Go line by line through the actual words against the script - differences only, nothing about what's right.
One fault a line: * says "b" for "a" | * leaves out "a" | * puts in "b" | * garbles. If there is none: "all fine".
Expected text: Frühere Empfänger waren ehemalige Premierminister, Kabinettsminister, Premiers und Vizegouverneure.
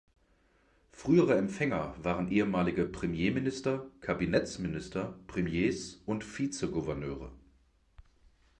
all fine